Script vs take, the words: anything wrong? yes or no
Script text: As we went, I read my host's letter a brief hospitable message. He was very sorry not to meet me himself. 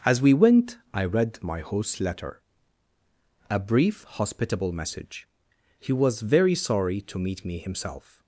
yes